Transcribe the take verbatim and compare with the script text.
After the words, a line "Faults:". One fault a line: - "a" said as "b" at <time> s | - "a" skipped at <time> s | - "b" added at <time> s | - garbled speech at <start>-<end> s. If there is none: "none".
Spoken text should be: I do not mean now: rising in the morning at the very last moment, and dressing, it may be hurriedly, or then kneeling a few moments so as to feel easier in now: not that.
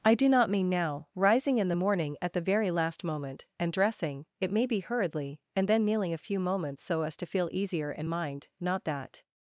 I do not mean now: rising in the morning at the very last moment, and dressing, it may be hurriedly, and then kneeling a few moments so as to feel easier in mind: not that.
Faults:
- "or" said as "and" at 5.6 s
- "now" said as "mind" at 8.1 s